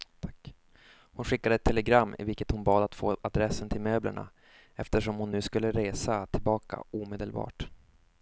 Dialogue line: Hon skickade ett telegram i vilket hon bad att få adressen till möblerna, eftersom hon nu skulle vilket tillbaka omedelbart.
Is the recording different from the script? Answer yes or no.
yes